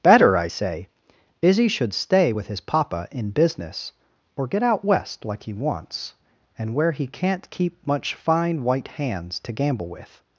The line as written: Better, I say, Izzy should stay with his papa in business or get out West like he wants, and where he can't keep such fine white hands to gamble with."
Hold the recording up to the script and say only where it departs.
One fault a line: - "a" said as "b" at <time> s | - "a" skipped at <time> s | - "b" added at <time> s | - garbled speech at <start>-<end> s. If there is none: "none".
- "such" said as "much" at 7.8 s